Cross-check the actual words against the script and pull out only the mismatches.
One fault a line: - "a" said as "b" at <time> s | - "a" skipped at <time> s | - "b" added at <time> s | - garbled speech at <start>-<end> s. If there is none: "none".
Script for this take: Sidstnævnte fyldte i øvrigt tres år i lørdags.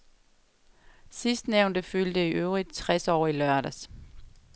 none